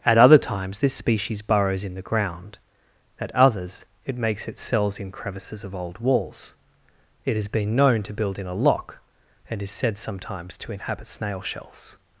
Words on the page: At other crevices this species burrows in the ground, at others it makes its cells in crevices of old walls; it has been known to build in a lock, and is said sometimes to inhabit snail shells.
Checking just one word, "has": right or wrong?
right